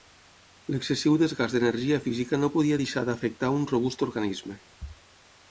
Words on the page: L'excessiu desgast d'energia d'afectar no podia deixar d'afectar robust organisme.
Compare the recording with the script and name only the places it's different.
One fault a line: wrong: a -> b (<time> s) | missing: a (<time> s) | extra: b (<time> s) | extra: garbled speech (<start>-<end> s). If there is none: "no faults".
wrong: d'afectar -> física (2.1 s)
extra: un (3.6 s)